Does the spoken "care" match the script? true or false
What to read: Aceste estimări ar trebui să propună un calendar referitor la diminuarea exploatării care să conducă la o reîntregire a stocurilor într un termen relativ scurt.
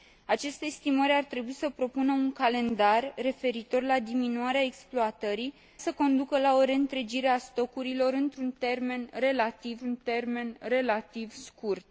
false